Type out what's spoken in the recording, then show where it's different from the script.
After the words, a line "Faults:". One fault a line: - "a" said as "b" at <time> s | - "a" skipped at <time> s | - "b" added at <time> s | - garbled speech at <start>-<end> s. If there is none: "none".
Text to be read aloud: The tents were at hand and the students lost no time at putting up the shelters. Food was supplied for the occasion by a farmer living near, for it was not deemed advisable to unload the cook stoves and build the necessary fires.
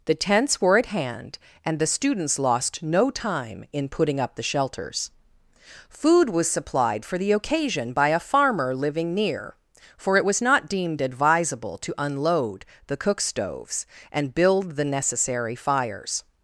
The tents were at hand and the students lost no time in putting up the shelters. Food was supplied for the occasion by a farmer living near, for it was not deemed advisable to unload the cook stoves and build the necessary fires.
Faults:
- "at" said as "in" at 3.7 s